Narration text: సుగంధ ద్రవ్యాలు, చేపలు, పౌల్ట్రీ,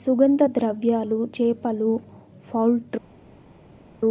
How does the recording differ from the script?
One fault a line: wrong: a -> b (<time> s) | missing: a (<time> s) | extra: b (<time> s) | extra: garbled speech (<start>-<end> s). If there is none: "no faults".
no faults